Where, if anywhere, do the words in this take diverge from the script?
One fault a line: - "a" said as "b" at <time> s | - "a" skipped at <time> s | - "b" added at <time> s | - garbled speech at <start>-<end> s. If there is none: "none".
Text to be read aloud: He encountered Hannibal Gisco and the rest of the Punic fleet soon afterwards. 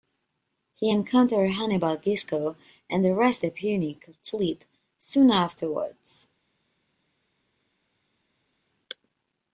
- "of" skipped at 3.4 s